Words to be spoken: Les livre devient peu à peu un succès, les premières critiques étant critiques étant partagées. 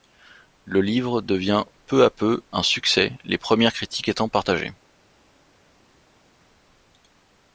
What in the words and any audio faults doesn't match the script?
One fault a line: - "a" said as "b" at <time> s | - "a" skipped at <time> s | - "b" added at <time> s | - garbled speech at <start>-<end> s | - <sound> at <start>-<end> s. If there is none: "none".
- "Les" said as "Le" at 0.7 s
- "critiques étant" skipped at 4.3 s